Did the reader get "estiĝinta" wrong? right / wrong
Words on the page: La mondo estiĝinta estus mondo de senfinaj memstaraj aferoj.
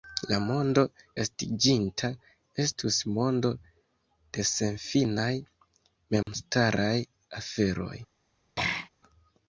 right